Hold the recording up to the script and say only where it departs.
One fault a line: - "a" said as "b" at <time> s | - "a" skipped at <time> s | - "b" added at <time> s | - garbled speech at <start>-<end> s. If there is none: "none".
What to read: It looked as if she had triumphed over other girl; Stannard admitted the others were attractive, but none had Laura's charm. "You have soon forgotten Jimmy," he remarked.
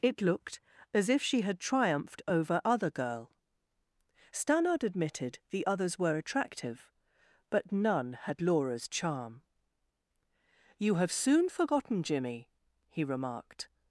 none